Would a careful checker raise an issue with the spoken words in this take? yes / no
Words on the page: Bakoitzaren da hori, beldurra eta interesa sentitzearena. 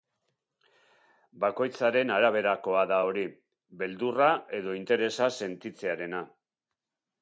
yes